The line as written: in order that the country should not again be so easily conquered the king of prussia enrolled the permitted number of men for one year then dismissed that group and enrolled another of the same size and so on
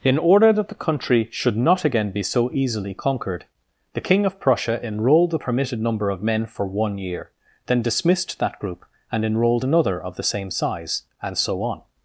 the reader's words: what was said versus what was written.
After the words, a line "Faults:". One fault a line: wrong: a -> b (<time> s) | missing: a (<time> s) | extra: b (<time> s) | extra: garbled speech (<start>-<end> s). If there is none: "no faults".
in order that the country should not again be so easily conquered the king of prussia enrolled the permitted number of men for one year then dismissed that group and enrolled another of the same size and so on
Faults:
no faults